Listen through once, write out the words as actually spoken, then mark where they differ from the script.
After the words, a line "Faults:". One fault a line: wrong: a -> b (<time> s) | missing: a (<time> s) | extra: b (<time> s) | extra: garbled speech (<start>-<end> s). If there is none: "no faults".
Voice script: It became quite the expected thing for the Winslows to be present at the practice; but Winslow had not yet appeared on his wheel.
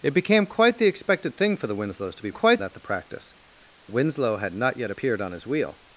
It became quite the expected thing for the Winslows to be quite at the practice; Winslow had not yet appeared on his wheel.
Faults:
wrong: present -> quite (2.3 s)
missing: but (3.3 s)